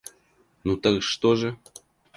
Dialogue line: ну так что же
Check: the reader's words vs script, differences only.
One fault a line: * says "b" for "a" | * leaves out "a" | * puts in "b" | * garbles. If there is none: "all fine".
all fine